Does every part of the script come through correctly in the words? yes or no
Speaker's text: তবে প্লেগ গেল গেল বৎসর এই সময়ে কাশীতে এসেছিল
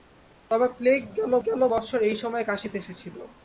yes